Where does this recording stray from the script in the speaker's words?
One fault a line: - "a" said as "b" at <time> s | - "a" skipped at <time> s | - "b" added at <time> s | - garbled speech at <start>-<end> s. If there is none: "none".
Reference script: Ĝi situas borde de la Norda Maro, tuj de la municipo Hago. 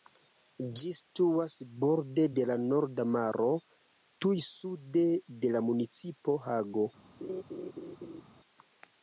- "sude" added at 4.5 s